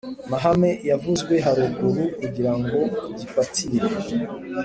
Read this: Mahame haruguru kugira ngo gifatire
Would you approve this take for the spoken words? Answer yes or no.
no